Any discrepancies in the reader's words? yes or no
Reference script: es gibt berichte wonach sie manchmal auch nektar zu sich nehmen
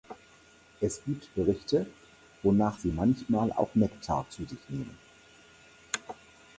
no